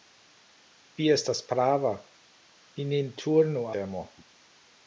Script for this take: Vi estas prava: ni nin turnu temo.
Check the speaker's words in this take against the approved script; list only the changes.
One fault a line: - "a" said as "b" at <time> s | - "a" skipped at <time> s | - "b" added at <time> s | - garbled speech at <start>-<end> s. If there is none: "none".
none